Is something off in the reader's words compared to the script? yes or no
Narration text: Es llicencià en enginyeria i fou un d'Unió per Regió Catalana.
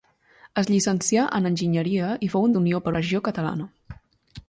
no